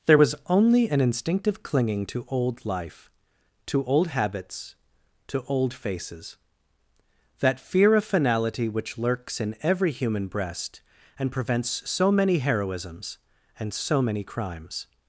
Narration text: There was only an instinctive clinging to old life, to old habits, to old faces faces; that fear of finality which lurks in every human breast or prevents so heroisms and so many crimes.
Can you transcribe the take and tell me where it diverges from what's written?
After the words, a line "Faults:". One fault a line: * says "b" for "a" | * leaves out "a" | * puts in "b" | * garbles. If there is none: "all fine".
There was only an instinctive clinging to old life, to old habits, to old faces; that fear of finality which lurks in every human breast and prevents so many heroisms and so many crimes.
Faults:
* leaves out "faces"
* says "and" for "or"
* puts in "many"